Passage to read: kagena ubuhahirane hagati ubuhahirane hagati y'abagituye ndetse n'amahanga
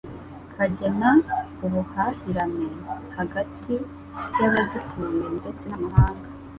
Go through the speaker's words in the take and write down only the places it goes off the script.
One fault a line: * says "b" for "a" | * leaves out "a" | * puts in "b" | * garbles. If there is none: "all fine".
* leaves out "ubuhahirane hagati"